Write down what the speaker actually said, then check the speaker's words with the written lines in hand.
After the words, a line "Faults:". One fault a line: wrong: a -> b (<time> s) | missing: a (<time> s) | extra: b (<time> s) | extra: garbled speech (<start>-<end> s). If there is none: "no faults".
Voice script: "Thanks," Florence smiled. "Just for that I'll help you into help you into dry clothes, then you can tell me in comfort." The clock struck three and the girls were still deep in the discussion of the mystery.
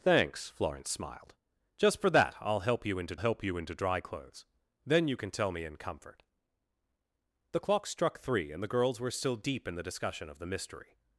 "Thanks," Florence smiled. "Just for that I'll help you into help you into dry clothes, then you can tell me in comfort." The clock struck three and the girls were still deep in the discussion of the mystery.
Faults:
no faults